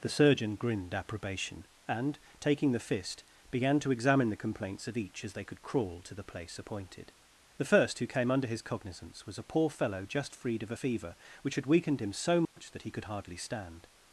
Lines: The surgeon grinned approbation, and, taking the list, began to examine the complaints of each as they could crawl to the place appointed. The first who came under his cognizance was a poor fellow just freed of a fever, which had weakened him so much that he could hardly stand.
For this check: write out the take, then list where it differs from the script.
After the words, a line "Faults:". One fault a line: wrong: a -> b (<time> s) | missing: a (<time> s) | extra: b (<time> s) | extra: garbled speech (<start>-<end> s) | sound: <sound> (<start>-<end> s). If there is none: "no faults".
The surgeon grinned approbation, and, taking the fist, began to examine the complaints of each as they could crawl to the place appointed. The first who came under his cognizance was a poor fellow just freed of a fever, which had weakened him so much that he could hardly stand.
Faults:
wrong: list -> fist (2.8 s)
sound: dropout (12.4-12.6 s)